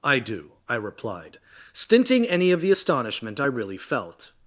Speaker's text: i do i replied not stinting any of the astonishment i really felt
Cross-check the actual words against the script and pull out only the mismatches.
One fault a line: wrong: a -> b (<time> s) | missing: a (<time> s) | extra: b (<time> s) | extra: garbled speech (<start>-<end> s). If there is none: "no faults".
missing: not (1.4 s)